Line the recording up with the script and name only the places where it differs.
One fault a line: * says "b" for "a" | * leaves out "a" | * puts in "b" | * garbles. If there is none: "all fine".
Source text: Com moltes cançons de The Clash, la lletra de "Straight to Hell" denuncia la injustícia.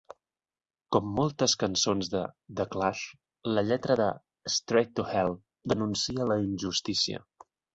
all fine